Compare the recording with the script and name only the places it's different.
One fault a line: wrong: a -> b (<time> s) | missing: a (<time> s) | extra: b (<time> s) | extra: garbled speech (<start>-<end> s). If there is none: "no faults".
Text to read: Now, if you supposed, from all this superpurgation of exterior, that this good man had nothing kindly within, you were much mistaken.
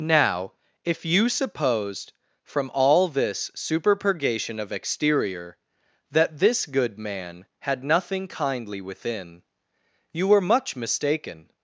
no faults